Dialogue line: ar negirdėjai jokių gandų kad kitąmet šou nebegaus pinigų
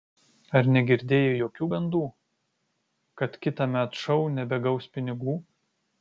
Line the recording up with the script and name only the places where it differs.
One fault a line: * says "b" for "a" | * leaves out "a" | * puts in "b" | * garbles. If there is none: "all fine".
all fine